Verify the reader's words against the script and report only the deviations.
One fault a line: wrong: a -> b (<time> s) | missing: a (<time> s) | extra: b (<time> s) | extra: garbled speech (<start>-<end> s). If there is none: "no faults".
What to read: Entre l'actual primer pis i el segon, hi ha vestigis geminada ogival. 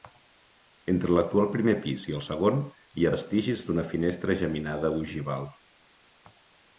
extra: d'una finestra (3.7 s)